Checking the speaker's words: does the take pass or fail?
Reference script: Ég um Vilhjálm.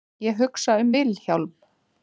fail